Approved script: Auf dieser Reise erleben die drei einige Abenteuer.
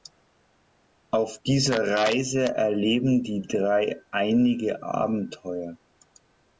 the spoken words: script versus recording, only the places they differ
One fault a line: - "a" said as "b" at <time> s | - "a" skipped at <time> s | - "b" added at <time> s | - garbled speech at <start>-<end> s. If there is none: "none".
none